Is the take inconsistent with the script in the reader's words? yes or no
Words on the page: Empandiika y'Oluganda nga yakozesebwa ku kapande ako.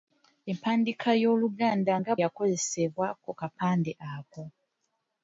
no